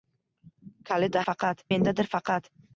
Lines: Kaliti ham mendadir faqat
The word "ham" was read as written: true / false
false